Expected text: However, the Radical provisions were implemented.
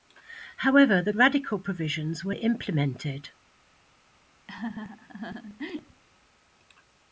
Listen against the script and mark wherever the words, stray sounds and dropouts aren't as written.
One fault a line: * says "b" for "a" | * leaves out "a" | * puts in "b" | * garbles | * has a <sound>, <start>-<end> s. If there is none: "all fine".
* has a laugh, 4.5-6.0 s